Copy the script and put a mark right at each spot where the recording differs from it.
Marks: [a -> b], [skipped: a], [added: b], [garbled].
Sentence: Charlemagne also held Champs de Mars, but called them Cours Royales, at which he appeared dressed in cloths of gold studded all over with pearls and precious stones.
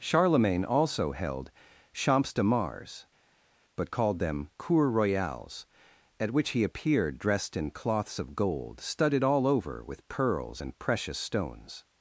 Charlemagne also held Champs de Mars, but called them Cours Royales, at which he appeared dressed in cloths of gold studded all over with pearls and precious stones.